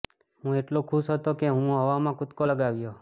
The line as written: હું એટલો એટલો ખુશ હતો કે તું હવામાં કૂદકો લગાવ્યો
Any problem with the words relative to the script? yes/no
yes